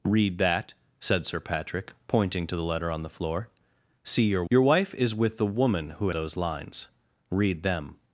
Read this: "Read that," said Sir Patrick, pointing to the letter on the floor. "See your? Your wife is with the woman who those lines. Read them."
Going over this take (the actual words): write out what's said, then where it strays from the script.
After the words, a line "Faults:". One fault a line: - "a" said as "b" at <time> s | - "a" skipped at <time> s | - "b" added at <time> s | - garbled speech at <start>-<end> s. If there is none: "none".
"Read that," said Sir Patrick, pointing to the letter on the floor. "See your? Your wife is with the woman who those lines. Read them."
Faults:
none